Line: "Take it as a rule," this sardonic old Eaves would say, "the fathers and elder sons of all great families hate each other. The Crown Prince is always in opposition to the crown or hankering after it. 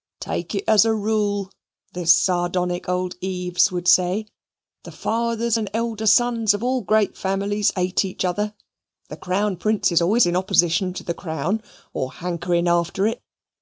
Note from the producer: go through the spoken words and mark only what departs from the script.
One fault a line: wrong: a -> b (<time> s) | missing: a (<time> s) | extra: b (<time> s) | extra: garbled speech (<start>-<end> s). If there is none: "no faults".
no faults